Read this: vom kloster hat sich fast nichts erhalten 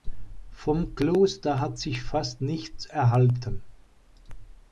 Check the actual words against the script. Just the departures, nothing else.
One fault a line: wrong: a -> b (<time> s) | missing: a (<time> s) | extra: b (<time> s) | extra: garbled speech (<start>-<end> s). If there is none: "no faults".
no faults